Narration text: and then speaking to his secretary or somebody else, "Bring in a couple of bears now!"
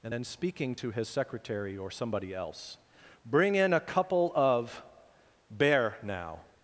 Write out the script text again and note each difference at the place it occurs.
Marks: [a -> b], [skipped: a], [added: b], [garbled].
and then speaking to his secretary or somebody else, "Bring in a couple of [bears -> bear] now!"